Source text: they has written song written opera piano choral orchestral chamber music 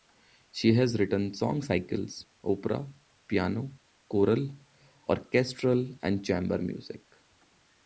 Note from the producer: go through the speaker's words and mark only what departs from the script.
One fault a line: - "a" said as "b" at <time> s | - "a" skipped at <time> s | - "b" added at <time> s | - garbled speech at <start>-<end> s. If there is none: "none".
- "they" said as "she" at 0.5 s
- "written" said as "cycles" at 1.6 s
- "and" added at 6.0 s